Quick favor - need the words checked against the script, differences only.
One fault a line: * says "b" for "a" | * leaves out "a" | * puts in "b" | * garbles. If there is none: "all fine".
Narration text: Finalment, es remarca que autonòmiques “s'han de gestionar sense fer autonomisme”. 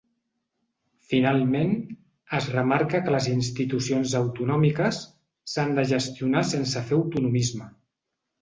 * puts in "les institucions"